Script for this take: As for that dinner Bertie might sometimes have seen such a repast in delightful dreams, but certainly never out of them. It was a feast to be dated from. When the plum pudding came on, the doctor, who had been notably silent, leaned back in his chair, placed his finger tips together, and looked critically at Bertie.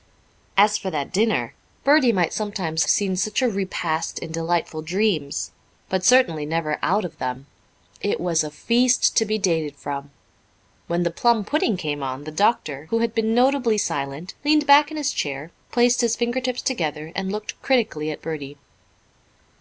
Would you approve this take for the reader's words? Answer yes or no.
no